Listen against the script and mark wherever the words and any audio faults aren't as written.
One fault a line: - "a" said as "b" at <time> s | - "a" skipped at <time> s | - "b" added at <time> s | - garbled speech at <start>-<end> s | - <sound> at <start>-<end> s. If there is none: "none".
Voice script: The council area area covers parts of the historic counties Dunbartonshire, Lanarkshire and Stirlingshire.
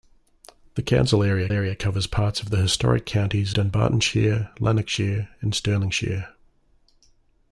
none